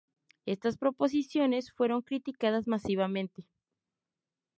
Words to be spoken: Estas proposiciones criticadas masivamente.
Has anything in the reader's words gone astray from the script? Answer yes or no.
yes